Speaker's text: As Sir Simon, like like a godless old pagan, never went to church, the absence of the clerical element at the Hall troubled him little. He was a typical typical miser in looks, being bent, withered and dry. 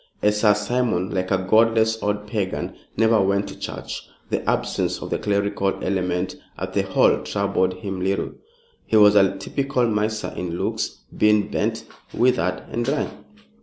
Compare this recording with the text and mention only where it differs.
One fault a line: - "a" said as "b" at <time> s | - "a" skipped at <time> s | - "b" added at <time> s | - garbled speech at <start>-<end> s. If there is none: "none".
- "like" skipped at 1.3 s
- "typical" skipped at 9.9 s